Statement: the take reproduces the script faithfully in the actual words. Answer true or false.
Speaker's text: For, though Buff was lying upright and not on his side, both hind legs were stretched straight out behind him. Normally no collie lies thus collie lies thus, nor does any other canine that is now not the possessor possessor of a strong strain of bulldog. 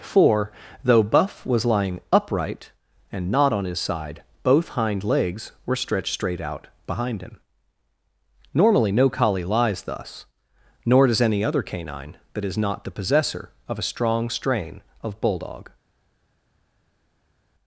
false